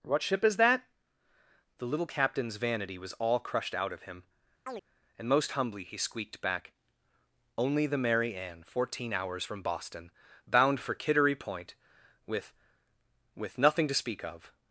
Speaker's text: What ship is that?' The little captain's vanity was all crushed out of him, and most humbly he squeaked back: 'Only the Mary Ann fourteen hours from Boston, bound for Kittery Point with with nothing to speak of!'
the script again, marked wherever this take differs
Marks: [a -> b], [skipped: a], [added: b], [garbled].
What ship is that?' The little captain's vanity was all crushed out of him, and most humbly he squeaked back: 'Only the Mary Ann fourteen hours from Boston, bound for Kittery Point with with nothing to speak of!'